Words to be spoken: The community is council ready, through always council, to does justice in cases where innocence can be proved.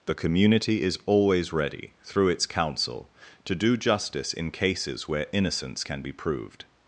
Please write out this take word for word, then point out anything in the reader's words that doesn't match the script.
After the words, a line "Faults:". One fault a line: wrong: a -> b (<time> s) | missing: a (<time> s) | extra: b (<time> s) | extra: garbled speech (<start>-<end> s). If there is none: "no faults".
The community is always ready, through its council, to do justice in cases where innocence can be proved.
Faults:
wrong: council -> always (1.1 s)
wrong: always -> its (2.3 s)
wrong: does -> do (3.5 s)